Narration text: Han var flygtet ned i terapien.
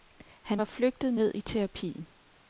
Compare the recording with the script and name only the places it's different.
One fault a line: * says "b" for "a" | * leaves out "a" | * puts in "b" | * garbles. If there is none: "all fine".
all fine